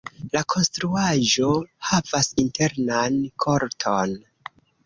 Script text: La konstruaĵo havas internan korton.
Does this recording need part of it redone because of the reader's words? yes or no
no